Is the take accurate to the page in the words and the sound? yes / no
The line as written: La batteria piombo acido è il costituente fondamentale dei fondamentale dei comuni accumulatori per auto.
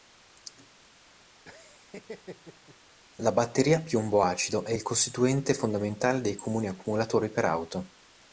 no